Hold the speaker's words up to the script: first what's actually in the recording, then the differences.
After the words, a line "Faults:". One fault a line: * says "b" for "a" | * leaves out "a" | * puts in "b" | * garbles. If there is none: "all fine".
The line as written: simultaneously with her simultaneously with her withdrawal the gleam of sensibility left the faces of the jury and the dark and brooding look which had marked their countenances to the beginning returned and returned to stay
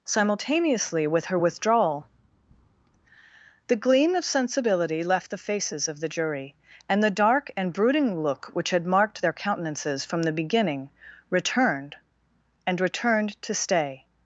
simultaneously with her withdrawal the gleam of sensibility left the faces of the jury and the dark and brooding look which had marked their countenances from the beginning returned and returned to stay
Faults:
* leaves out "simultaneously with her"
* says "from" for "to"